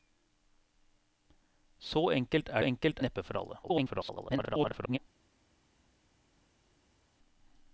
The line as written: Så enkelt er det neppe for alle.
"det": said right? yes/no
no